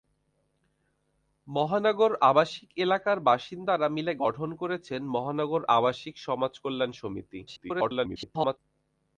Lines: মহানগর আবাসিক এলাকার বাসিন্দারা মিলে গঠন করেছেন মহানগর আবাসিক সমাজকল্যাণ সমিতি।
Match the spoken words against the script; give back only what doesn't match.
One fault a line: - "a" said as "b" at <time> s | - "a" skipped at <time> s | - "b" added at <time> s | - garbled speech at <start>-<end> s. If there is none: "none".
- garbled speech at 7.5-8.6 s